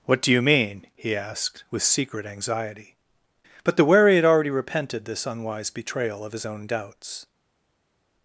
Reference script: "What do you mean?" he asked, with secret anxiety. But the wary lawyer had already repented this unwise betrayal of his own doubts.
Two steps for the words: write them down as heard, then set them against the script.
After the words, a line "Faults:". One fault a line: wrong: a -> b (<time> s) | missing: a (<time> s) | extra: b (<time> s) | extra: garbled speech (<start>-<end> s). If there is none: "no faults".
"What do you mean?" he asked, with secret anxiety. But the wary had already repented this unwise betrayal of his own doubts.
Faults:
missing: lawyer (4.2 s)